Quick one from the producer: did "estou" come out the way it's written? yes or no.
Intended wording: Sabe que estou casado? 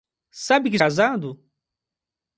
no